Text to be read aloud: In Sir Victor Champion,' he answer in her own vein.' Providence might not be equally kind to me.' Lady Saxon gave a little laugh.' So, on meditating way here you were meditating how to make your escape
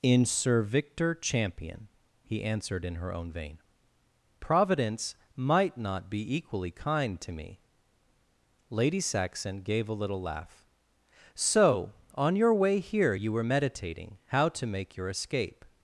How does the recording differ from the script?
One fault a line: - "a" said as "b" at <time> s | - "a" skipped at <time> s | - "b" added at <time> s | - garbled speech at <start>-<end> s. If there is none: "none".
- "answer" said as "answered" at 2.4 s
- "meditating" said as "your" at 12.3 s